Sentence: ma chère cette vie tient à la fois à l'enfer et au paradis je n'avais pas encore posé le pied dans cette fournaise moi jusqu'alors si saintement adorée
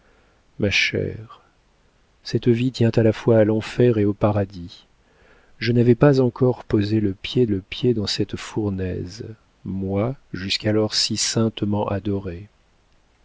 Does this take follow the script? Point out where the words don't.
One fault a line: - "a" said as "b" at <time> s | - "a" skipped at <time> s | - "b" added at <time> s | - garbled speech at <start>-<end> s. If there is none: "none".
- "le pied" added at 7.5 s